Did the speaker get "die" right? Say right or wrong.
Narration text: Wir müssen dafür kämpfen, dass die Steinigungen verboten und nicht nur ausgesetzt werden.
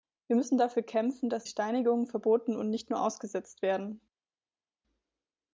wrong